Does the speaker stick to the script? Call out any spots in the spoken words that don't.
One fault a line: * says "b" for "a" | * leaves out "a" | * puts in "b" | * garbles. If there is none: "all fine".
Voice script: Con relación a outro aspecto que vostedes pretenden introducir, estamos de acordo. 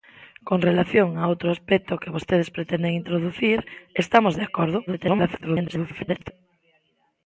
* garbles